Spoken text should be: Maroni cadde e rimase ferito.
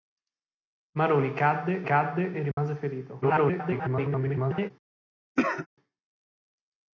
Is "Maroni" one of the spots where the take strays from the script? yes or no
no